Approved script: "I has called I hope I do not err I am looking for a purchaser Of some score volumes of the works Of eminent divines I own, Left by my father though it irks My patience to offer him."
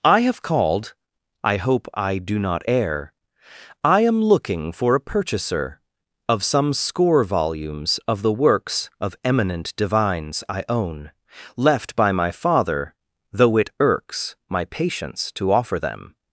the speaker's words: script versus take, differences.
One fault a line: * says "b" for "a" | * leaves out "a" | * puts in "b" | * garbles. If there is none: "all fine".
* says "have" for "has"
* says "them" for "him"